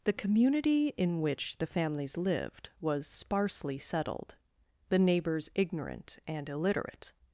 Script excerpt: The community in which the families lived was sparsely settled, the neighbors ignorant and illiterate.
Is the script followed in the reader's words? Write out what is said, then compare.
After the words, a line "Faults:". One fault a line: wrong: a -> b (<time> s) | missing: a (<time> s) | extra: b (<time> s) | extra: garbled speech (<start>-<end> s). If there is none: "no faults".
The community in which the families lived was sparsely settled, the neighbors ignorant and illiterate.
Faults:
no faults